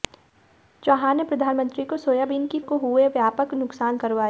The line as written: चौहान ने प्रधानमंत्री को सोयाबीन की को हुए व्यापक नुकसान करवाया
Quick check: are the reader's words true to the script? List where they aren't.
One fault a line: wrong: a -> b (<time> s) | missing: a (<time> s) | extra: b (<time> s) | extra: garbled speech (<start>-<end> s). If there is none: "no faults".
no faults